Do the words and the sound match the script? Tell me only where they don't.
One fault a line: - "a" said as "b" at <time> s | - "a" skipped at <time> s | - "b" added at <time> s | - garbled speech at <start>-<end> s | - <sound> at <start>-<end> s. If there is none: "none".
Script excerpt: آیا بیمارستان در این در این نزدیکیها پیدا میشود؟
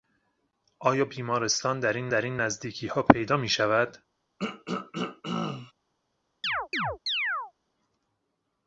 - throat clearing at 4.4-5.7 s
- chirp at 6.4-7.5 s